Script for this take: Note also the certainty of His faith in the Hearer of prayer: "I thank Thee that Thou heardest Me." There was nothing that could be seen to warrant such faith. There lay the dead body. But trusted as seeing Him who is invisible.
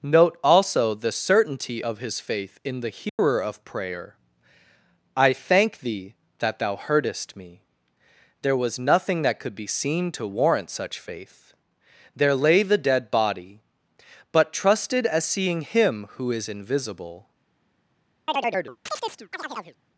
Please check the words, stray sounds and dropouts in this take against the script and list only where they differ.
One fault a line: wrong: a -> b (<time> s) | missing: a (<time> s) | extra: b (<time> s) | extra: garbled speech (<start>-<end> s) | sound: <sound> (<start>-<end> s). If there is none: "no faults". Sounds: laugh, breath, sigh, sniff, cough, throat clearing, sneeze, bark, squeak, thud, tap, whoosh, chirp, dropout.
sound: dropout (3.1-3.2 s)
sound: chirp (18.3-19.8 s)